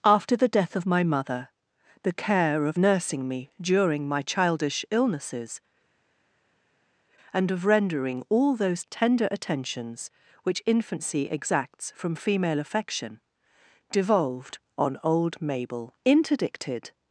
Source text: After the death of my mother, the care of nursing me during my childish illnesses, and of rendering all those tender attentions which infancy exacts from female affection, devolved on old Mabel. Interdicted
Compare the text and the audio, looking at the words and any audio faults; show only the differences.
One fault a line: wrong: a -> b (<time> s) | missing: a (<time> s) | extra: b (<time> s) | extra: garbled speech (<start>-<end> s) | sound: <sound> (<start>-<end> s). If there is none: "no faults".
no faults